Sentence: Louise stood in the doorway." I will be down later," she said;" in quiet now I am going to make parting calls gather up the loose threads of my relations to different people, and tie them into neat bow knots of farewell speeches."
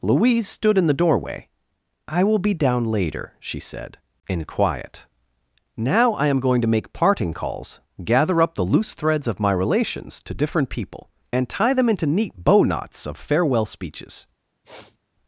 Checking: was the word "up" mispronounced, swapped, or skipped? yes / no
no